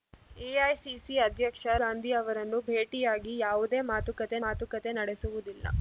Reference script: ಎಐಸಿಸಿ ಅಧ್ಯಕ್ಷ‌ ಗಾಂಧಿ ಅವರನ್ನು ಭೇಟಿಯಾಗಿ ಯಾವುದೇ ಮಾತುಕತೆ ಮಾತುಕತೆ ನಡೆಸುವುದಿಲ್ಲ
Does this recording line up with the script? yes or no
yes